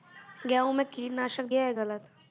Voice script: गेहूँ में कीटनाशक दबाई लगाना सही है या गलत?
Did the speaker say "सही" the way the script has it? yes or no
no